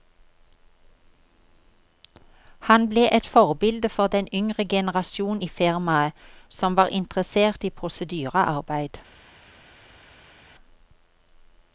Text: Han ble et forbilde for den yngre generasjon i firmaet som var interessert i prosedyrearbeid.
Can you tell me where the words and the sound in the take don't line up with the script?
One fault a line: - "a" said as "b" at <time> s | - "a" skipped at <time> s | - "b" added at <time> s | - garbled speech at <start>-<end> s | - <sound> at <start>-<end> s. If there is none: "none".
none